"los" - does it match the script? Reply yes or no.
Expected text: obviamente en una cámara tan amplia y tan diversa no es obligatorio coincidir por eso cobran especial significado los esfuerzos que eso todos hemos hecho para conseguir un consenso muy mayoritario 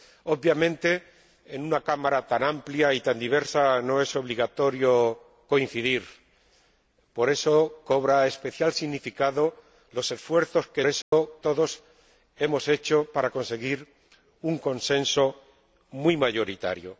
yes